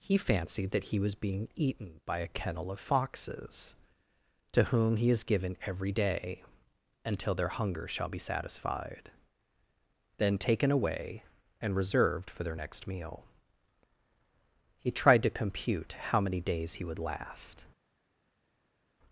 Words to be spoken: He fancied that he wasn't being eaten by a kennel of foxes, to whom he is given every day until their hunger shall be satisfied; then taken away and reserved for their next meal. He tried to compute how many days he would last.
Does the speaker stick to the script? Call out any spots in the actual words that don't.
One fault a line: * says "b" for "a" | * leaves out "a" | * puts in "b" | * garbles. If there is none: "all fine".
* says "was" for "wasn't"